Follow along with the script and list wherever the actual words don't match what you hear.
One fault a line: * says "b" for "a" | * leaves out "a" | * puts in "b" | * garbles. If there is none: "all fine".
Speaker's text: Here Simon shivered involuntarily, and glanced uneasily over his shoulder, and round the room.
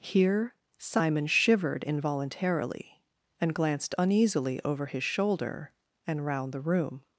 all fine